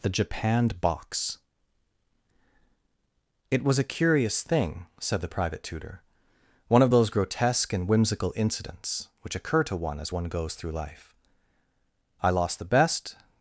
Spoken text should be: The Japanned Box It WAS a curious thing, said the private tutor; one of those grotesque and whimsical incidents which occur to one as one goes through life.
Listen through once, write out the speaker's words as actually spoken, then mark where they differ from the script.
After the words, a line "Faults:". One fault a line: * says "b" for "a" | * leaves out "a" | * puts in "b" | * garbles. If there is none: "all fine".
The Japanned Box It WAS a curious thing, said the private tutor; one of those grotesque and whimsical incidents which occur to one as one goes through life. I lost the best
Faults:
* puts in "I lost the best"